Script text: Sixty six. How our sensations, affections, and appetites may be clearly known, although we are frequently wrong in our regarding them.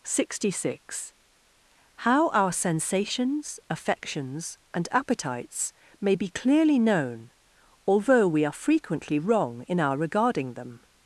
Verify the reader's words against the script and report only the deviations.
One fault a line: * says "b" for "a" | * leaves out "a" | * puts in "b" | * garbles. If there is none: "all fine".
all fine